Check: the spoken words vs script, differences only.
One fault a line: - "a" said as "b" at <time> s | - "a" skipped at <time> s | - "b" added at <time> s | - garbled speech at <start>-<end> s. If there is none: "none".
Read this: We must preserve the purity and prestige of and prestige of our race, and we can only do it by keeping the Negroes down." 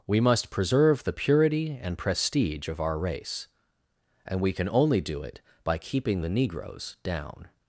- "and prestige of" skipped at 2.8 s